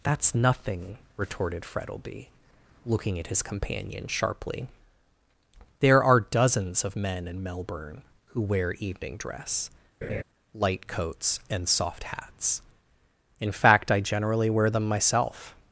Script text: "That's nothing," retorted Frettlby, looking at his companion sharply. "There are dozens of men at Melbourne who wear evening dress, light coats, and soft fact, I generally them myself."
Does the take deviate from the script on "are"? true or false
false